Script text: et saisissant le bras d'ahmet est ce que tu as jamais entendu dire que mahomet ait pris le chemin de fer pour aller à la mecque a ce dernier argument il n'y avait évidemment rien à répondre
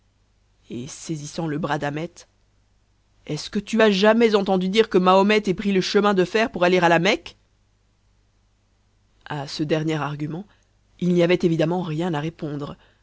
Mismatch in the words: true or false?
false